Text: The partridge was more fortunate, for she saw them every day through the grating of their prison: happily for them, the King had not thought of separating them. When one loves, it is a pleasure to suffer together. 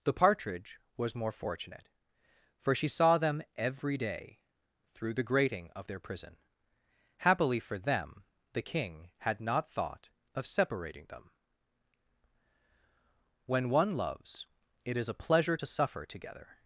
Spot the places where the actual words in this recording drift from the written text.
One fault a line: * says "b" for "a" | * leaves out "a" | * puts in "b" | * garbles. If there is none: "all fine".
all fine